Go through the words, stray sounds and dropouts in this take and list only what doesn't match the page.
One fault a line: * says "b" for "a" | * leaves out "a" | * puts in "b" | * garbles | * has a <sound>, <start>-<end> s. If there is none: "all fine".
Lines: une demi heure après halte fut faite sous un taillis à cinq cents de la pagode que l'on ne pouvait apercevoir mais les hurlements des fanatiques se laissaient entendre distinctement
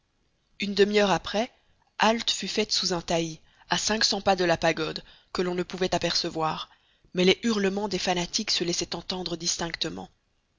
* puts in "pas"